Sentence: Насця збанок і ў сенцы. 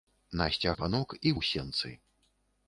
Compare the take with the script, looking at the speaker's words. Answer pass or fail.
pass